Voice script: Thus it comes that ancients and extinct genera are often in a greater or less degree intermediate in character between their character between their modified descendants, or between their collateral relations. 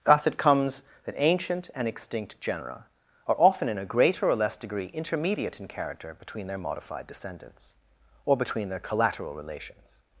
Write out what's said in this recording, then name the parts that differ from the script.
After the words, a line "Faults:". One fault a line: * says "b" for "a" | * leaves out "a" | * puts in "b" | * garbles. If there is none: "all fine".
Thus it comes that ancient and extinct genera are often in a greater or less degree intermediate in character between their modified descendants, or between their collateral relations.
Faults:
* says "ancient" for "ancients"
* leaves out "character between their"